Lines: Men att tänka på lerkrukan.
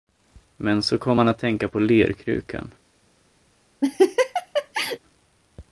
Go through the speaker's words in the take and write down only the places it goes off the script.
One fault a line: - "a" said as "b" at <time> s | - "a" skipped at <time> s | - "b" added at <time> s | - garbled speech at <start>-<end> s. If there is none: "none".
- "så kom han" added at 0.8 s